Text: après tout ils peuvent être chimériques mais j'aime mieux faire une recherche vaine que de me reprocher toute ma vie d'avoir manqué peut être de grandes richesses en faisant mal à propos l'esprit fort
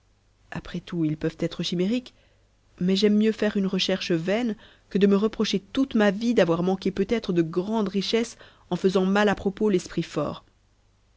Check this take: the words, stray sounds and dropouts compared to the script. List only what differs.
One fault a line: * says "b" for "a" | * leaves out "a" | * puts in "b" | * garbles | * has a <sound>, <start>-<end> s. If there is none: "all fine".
all fine